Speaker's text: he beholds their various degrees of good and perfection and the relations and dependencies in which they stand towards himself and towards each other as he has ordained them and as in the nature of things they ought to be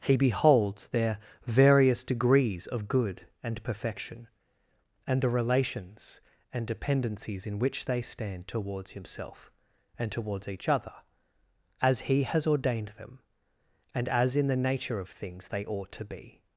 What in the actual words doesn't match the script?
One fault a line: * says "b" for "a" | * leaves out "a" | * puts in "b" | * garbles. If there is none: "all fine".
all fine